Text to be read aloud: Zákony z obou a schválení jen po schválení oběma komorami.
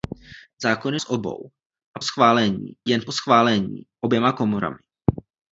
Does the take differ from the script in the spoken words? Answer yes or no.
no